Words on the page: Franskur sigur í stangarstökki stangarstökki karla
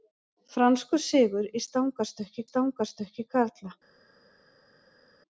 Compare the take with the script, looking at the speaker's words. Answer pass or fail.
pass